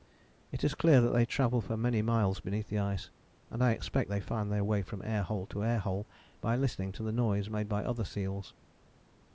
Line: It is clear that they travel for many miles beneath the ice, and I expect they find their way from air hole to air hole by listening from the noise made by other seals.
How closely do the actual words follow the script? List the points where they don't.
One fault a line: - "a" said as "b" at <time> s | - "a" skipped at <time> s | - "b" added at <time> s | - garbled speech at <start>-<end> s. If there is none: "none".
- "from" said as "to" at 6.9 s